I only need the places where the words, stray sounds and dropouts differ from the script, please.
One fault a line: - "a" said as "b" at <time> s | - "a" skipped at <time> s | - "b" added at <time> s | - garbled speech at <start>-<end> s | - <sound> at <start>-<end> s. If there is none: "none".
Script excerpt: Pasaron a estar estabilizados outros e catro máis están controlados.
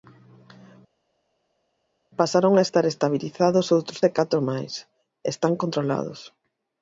none